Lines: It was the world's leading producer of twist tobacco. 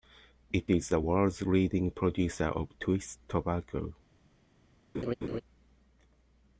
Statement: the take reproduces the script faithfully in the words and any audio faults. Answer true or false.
false